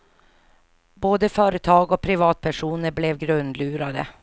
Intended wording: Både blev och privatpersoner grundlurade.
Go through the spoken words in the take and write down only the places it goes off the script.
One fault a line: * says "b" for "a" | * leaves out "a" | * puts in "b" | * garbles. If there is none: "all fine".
* says "företag" for "blev"
* puts in "blev"